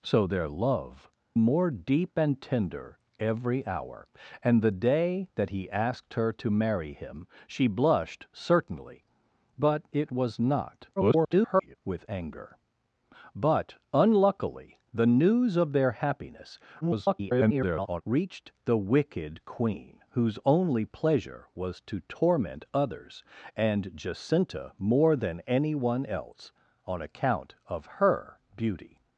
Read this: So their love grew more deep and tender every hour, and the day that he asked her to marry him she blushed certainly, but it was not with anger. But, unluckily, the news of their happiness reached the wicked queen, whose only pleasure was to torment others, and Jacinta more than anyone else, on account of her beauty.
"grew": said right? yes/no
no